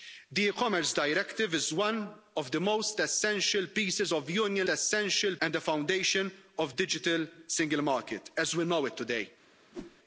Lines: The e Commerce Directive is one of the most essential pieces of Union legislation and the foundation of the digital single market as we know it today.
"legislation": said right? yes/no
no